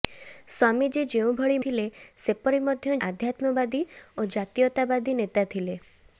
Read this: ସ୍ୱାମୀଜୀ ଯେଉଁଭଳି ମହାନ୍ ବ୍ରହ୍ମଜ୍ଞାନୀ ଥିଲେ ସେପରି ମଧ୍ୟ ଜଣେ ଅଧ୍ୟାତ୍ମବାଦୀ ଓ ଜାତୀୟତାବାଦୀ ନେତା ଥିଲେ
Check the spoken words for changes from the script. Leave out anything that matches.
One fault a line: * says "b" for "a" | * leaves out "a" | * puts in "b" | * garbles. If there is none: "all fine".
* leaves out "ମହାନ୍ ବ୍ରହ୍ମଜ୍ଞାନୀ"
* leaves out "ଜଣେ"